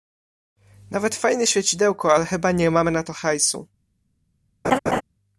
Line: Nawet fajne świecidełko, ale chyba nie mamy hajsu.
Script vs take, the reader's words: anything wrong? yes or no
yes